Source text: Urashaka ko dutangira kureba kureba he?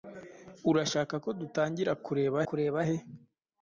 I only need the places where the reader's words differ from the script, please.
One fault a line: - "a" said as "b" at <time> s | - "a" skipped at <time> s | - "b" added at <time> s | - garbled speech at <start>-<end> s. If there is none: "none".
none